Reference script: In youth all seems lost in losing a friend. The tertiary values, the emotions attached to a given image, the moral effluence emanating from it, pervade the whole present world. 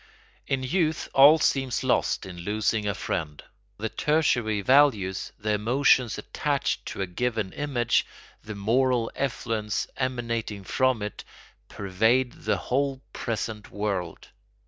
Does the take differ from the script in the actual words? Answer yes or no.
no